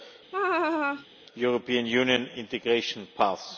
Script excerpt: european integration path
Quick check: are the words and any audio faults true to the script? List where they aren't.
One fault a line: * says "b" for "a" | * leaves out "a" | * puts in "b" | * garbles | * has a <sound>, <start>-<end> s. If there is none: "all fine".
* has a laugh, 0.3-1.1 s
* puts in "union"